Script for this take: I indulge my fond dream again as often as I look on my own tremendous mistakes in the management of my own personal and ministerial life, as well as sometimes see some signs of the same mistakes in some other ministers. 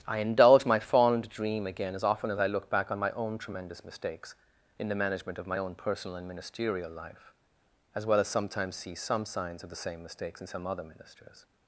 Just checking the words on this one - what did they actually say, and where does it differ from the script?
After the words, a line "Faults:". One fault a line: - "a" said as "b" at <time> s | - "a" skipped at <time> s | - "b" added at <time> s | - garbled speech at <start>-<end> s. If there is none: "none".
I indulge my fond dream again as often as I look back on my own tremendous mistakes in the management of my own personal and ministerial life, as well as sometimes see some signs of the same mistakes in some other ministers.
Faults:
- "back" added at 2.7 s